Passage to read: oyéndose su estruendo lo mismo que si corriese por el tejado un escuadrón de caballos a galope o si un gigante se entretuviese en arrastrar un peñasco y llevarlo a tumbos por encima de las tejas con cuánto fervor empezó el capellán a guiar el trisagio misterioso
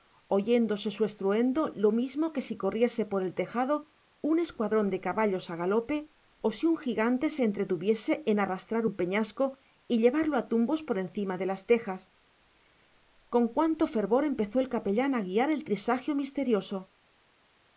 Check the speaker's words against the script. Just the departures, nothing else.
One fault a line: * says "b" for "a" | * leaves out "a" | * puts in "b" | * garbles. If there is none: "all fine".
all fine